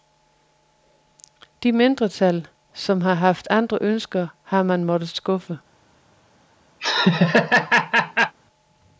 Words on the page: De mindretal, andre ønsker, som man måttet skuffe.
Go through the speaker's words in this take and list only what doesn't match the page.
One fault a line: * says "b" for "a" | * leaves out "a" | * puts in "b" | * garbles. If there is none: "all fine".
* puts in "som har haft"
* says "har" for "som"